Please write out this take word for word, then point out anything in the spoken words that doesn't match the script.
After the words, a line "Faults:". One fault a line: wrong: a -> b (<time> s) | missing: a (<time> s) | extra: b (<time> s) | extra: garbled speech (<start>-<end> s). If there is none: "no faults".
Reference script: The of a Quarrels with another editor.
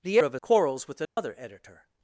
The of a Quarrels with another editor.
Faults:
no faults